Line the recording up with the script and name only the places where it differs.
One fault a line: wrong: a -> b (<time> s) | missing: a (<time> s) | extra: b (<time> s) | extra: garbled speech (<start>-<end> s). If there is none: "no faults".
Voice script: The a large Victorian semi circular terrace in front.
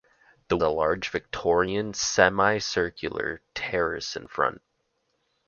no faults